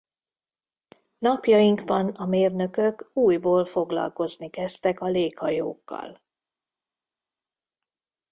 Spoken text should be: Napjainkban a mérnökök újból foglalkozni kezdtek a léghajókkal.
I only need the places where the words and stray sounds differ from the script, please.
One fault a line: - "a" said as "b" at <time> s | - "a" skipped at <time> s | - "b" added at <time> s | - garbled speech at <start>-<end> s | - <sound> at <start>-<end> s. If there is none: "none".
none